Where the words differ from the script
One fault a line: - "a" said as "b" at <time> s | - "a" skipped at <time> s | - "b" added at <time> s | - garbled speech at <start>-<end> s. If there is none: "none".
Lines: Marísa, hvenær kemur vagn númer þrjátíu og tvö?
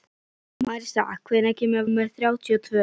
- "vagn" skipped at 1.9 s